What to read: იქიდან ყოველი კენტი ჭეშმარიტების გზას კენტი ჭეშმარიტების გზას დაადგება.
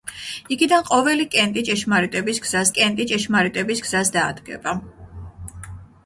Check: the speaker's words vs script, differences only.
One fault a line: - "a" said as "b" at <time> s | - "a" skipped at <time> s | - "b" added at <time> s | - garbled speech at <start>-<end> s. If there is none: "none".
none